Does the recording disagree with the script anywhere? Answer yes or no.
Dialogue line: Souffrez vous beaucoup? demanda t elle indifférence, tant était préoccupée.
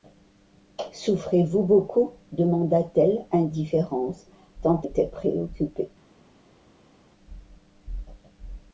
no